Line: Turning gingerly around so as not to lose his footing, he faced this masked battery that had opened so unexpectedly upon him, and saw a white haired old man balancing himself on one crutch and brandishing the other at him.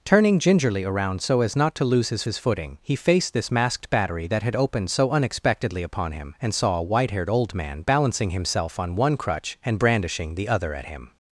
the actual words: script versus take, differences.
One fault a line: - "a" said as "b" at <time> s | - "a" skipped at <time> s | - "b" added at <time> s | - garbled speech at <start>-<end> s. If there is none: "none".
- "his" added at 2.2 s